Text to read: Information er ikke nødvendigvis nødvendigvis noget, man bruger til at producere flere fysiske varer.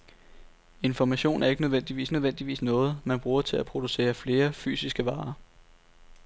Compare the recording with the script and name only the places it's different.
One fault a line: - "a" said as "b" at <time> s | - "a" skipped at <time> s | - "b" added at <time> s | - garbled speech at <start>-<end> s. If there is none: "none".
none